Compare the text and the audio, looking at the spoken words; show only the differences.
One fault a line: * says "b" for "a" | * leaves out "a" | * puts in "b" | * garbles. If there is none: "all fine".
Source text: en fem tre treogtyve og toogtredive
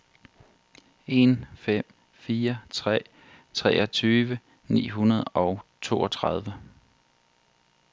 * puts in "fire"
* puts in "ni hundrede"